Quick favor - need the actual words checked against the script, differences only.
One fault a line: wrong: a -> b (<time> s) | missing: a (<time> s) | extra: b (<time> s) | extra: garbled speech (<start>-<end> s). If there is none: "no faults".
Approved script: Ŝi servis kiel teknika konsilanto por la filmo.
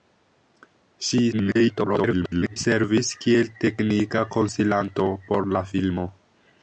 extra: garbled speech (1.3-2.6 s)